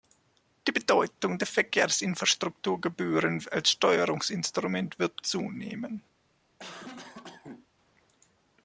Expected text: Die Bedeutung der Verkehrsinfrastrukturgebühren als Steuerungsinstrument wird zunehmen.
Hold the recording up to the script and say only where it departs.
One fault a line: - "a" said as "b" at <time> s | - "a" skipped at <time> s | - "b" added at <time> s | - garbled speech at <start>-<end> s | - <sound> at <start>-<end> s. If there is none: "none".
- cough at 6.6-7.7 s